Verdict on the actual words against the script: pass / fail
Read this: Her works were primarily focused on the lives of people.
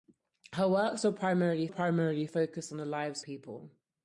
fail